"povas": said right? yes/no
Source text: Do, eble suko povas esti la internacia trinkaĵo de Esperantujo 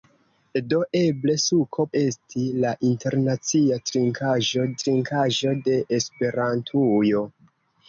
no